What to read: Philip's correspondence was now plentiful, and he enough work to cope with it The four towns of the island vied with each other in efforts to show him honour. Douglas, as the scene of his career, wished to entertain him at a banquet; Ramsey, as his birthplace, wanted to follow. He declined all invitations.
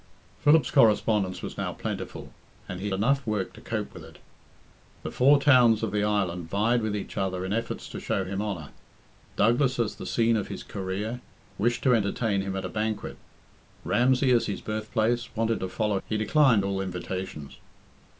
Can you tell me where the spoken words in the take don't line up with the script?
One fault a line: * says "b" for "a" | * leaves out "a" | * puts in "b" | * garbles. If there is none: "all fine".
all fine